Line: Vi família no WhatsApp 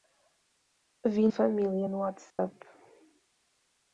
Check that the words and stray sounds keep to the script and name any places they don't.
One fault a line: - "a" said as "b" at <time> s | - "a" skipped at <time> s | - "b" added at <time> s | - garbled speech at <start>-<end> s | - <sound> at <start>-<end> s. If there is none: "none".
- dropout at 2.3-2.4 s